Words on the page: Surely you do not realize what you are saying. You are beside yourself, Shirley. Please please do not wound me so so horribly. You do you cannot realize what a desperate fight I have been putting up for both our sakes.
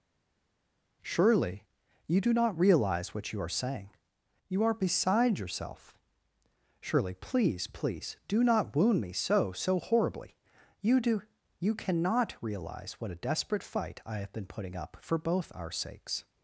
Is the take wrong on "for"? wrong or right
right